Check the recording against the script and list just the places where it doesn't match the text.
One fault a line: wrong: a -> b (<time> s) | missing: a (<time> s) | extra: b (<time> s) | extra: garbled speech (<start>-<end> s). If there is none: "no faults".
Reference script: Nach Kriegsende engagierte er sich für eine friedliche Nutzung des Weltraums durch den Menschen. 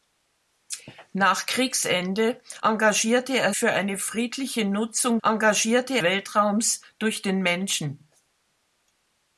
missing: sich (3.5 s)
wrong: des -> engagierte (5.2 s)